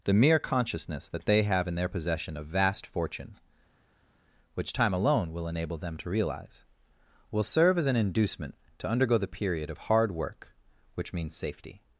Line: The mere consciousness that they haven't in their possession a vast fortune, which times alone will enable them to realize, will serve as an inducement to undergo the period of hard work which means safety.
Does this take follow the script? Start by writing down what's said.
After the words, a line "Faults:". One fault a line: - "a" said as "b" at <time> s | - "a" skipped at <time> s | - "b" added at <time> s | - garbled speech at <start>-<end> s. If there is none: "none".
The mere consciousness that they have in their possession a vast fortune, which time alone will enable them to realize, will serve as an inducement to undergo the period of hard work which means safety.
Faults:
- "haven't" said as "have" at 1.4 s
- "times" said as "time" at 4.7 s